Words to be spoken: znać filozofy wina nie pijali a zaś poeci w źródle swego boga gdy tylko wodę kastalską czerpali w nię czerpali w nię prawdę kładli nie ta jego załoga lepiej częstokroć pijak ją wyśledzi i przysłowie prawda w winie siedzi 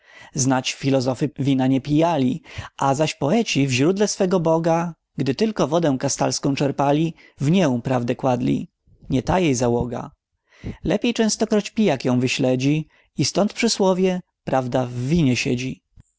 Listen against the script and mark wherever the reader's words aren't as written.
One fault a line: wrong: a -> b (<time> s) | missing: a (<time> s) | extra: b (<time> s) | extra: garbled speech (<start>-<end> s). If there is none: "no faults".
missing: czerpali w nię (7.8 s)
wrong: jego -> jej (9.4 s)
extra: stąd (13.2 s)